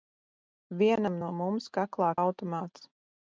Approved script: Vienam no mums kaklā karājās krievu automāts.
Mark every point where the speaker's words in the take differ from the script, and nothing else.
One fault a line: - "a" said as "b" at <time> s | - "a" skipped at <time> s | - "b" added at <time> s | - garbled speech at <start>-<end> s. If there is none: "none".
- "karājās krievu" skipped at 2.1 s